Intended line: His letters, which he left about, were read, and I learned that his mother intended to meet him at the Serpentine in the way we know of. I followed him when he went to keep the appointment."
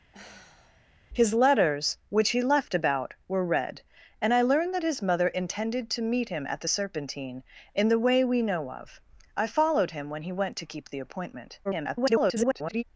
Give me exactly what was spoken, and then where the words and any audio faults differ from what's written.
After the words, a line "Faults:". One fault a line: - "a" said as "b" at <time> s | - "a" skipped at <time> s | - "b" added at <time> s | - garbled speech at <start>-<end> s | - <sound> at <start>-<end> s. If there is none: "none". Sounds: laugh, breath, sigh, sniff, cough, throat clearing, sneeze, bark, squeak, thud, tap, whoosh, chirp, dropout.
His letters, which he left about, were read, and I learned that his mother intended to meet him at the Serpentine in the way we know of. I followed him when he went to keep the appointment." [garbled]
Faults:
- sigh at 0.1-0.9 s
- garbled speech at 11.6-12.8 s